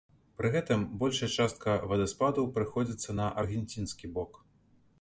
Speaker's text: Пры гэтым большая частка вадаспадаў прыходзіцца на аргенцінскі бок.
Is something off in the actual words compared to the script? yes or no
no